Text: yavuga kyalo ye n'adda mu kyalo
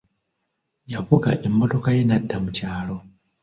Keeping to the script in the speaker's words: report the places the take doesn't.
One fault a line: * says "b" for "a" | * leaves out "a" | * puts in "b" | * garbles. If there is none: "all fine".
* says "emmotoka" for "kyalo"